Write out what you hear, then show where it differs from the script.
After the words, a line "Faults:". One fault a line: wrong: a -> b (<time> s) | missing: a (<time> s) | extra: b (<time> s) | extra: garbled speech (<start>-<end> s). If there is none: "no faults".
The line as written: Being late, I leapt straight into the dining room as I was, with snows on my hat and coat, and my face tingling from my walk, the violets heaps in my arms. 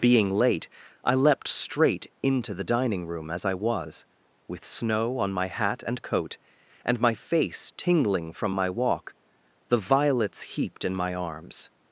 Being late, I leapt straight into the dining room as I was, with snow on my hat and coat, and my face tingling from my walk, the violets heaped in my arms.
Faults:
wrong: snows -> snow (4.7 s)
wrong: heaps -> heaped (10.5 s)